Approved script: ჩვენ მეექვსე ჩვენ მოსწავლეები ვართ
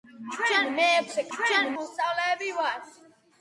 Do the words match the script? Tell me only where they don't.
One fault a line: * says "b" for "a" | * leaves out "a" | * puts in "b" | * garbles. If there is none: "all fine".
all fine